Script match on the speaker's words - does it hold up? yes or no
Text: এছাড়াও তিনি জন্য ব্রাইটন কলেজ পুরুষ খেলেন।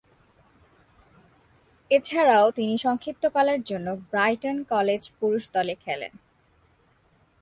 no